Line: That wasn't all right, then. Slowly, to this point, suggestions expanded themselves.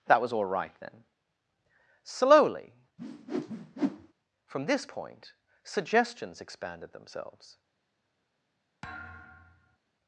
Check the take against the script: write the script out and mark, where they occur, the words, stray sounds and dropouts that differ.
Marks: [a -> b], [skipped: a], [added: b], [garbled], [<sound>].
That [wasn't -> was] all right, then. Slowly, [whoosh] [to -> from] this point, suggestions expanded themselves. [thud]